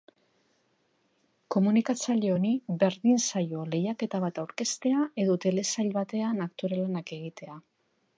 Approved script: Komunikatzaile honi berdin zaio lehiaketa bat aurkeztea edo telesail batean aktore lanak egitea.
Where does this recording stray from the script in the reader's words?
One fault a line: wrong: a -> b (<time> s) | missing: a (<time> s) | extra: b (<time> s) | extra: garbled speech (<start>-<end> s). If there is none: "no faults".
no faults